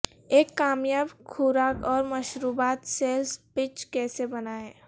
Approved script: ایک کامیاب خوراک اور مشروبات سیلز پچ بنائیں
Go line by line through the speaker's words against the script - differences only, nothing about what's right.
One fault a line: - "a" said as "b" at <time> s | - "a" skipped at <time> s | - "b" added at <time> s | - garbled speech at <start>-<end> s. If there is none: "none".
- "کیسے" added at 3.9 s